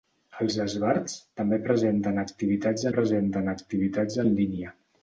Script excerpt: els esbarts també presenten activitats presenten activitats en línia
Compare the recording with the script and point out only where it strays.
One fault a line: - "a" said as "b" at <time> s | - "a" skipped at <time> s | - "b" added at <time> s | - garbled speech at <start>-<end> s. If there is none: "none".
none